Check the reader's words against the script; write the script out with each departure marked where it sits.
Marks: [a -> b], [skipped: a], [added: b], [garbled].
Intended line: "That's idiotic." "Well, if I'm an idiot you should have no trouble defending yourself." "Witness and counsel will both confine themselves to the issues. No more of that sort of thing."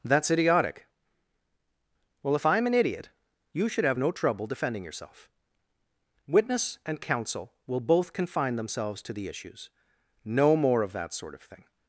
"That's idiotic." "Well, if I'm an idiot you should have no trouble defending yourself." "Witness and counsel will both confine themselves to the issues. No more of that sort of thing."